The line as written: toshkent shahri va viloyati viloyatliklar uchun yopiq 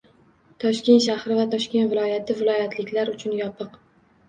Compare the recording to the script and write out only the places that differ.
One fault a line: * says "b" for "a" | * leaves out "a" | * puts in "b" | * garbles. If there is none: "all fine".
* puts in "toshkent"